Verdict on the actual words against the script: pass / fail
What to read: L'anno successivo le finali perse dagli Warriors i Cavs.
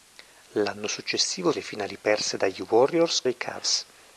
pass